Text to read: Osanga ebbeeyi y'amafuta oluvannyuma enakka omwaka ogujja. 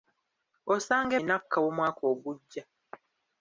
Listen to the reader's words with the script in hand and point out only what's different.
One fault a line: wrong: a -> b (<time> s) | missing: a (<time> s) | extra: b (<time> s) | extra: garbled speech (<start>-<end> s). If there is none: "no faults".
missing: ebbeeyi y'amafuta oluvannyuma (1.1 s)